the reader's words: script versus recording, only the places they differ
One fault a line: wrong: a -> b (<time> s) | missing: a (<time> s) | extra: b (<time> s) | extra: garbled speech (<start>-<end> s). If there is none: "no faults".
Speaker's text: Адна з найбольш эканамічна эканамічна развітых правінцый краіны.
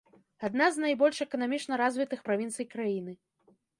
missing: эканамічна (1.7 s)